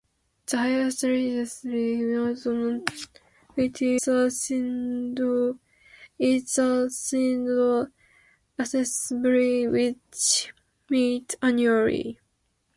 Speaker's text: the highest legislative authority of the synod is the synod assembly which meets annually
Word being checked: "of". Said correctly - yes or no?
no